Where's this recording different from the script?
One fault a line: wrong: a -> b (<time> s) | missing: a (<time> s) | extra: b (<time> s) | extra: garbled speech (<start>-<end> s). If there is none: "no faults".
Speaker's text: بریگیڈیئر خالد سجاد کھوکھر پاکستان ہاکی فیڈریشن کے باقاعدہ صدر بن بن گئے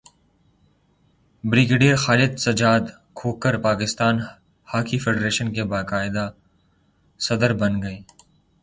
missing: بن (7.8 s)